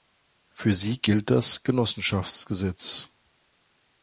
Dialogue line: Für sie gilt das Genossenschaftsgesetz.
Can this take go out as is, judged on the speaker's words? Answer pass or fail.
pass